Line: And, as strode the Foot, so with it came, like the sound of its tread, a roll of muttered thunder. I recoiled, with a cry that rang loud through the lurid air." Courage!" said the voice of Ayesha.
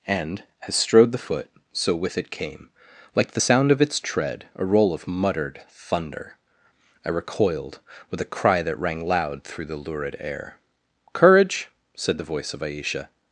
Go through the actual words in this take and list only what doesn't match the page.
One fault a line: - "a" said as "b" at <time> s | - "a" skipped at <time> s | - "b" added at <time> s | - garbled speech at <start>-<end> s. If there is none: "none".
none